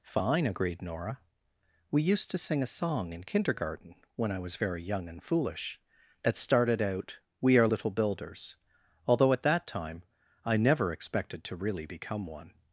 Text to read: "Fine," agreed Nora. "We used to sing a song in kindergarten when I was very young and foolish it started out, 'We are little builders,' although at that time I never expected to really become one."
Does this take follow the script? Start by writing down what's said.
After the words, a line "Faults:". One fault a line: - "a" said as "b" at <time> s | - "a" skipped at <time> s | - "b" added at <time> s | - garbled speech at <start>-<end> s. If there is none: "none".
"Fine," agreed Nora. "We used to sing a song in kindergarten when I was very young and foolish it started out, 'We are little builders,' although at that time I never expected to really become one."
Faults:
none